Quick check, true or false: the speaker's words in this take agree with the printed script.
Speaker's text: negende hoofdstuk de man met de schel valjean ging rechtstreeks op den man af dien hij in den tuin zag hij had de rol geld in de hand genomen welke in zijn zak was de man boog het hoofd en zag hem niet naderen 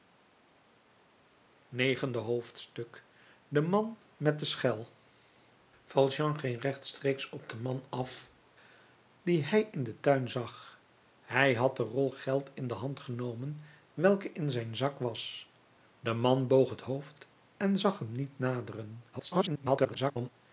false